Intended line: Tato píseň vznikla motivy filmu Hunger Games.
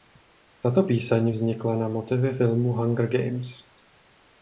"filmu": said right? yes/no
yes